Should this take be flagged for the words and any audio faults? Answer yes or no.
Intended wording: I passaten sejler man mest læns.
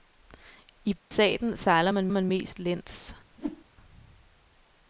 yes